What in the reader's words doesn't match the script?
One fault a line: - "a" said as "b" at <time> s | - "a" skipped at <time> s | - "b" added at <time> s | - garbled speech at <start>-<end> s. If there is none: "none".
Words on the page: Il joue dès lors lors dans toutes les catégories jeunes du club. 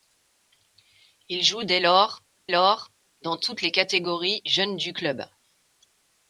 none